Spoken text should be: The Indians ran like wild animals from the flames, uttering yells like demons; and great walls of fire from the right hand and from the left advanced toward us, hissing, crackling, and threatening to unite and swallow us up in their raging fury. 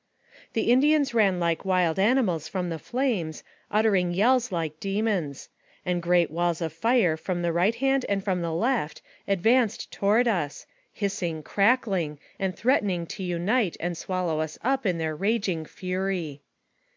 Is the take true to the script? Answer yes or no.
yes